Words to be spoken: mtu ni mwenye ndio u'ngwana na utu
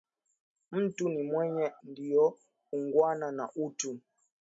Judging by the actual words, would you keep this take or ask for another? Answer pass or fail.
pass